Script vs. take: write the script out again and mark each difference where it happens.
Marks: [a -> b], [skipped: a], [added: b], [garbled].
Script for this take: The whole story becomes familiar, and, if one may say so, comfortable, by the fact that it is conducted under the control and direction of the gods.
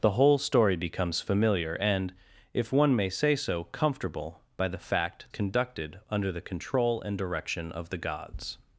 The whole story becomes familiar, and, if one may say so, comfortable, by the fact [skipped: that it is] conducted under the control and direction of the gods.